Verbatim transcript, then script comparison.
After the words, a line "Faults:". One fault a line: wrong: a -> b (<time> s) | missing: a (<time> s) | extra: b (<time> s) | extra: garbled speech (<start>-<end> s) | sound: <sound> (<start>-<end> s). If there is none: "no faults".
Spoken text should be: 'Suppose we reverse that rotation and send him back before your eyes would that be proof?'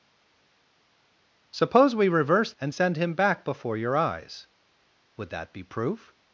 'Suppose we reverse and send him back before your eyes would that be proof?'
Faults:
missing: that rotation (2.5 s)